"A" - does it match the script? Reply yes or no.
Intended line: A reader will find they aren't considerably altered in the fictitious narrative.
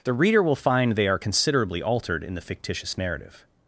no